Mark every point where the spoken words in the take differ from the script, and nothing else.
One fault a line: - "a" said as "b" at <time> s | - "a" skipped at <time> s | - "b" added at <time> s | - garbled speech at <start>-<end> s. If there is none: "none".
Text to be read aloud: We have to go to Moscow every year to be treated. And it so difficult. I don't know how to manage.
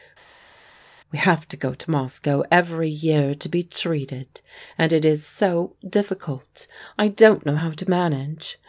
- "is" added at 5.0 s